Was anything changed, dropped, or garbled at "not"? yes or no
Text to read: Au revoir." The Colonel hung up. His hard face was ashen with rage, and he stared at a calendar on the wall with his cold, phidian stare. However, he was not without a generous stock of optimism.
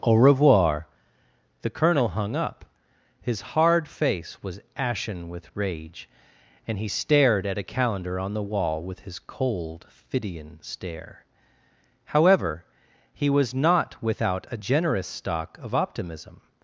no